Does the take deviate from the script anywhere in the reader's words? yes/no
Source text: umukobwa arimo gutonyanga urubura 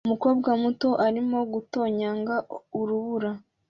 yes